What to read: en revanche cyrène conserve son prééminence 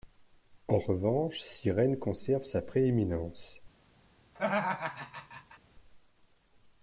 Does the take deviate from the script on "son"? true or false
true